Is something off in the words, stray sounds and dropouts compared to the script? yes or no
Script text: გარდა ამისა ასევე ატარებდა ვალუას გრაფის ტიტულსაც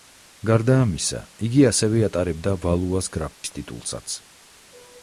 yes